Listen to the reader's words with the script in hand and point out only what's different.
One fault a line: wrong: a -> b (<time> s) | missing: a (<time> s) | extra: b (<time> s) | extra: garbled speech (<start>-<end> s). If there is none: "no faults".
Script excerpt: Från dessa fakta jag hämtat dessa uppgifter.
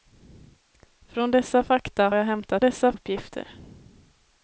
no faults